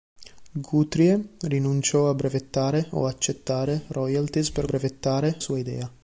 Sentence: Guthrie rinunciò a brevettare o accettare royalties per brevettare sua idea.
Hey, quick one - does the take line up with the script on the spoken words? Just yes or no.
yes